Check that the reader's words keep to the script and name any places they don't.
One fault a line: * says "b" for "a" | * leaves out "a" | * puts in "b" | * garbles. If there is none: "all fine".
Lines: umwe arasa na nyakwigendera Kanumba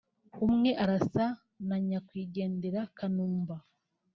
all fine